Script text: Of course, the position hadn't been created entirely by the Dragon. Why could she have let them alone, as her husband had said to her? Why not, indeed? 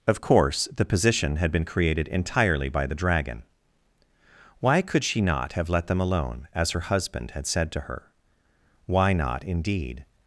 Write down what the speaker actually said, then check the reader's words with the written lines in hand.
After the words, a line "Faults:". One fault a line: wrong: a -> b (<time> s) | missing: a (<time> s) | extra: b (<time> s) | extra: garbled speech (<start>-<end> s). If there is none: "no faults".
Of course, the position had been created entirely by the Dragon. Why could she not have let them alone, as her husband had said to her? Why not, indeed?
Faults:
wrong: hadn't -> had (1.4 s)
extra: not (5.2 s)